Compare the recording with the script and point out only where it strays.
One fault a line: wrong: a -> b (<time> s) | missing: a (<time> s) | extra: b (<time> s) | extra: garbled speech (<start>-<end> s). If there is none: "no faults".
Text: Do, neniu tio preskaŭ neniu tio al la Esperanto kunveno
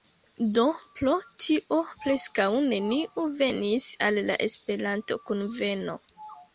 wrong: neniu -> pro (1.0 s)
wrong: tio -> venis (3.4 s)